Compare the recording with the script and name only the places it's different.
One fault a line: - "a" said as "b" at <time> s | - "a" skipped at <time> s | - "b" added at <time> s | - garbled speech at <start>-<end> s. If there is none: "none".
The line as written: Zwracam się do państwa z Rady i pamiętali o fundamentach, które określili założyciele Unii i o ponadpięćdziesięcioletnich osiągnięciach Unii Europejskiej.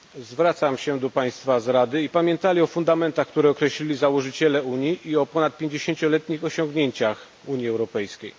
none